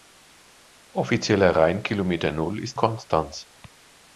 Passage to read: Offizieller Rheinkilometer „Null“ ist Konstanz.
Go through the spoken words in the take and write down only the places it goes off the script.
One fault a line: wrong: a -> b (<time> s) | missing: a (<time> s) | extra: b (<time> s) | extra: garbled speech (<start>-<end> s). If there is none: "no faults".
no faults